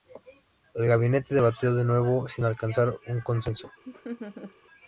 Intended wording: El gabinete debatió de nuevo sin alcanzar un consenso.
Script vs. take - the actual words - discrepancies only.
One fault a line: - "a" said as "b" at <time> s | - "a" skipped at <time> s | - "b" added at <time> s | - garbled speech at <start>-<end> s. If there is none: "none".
none